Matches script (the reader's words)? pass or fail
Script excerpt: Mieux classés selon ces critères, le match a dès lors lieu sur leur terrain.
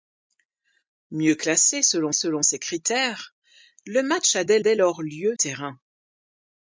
fail